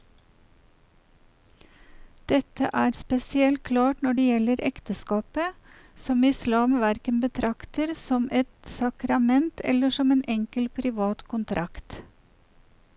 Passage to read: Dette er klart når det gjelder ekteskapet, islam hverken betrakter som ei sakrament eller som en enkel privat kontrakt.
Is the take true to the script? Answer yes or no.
no